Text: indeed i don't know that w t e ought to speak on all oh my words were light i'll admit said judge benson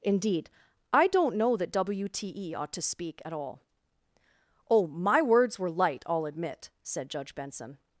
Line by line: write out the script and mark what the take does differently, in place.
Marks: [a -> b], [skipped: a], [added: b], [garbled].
indeed i don't know that w t e ought to speak [on -> at] all oh my words were light i'll admit said judge benson